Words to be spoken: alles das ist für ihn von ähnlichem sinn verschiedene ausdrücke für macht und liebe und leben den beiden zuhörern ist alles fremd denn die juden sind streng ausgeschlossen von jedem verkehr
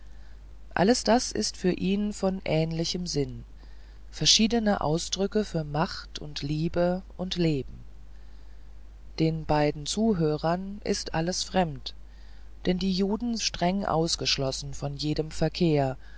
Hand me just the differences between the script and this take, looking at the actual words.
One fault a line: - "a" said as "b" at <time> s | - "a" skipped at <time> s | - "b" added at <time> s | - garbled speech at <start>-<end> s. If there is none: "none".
- "sind" skipped at 13.4 s